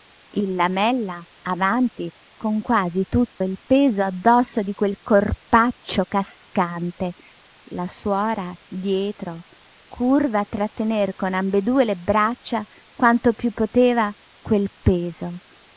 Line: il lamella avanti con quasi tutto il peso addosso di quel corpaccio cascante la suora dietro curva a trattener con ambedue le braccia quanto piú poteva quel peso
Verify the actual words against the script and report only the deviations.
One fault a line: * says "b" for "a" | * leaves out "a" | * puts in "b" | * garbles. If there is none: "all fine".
all fine